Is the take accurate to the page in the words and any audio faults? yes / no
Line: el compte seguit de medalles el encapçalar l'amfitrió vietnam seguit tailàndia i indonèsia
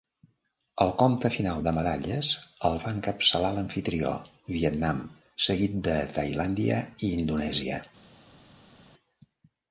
no